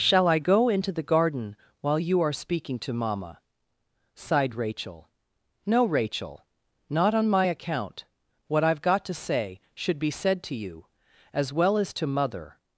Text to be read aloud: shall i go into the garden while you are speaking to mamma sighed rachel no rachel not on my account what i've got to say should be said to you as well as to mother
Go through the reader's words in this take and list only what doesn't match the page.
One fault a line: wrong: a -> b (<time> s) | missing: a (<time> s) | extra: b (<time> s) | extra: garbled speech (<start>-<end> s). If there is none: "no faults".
no faults